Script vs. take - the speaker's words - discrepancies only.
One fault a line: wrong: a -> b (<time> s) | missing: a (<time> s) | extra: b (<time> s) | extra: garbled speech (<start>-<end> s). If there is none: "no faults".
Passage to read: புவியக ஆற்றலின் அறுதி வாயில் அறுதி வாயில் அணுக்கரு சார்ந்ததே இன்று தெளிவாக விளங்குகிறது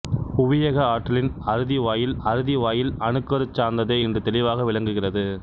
no faults